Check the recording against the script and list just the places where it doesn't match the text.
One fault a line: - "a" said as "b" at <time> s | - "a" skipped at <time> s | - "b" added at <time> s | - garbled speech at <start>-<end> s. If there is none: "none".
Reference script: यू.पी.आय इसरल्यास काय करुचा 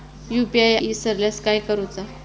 none